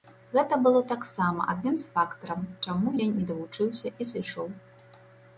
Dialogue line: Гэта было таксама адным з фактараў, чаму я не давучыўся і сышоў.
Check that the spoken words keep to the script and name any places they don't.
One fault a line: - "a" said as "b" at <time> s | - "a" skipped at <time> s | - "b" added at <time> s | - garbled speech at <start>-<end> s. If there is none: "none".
none